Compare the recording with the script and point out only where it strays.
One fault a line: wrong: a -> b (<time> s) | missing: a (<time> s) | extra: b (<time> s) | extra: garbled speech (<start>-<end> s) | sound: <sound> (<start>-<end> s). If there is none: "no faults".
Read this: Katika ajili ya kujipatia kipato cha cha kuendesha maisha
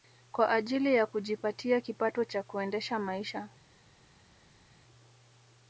wrong: Katika -> Kwa (0.3 s)
missing: cha (2.4 s)